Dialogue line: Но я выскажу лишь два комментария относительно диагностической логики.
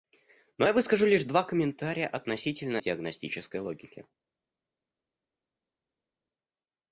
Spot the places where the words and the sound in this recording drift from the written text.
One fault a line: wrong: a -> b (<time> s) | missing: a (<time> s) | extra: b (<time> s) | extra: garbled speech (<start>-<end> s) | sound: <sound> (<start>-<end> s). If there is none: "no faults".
no faults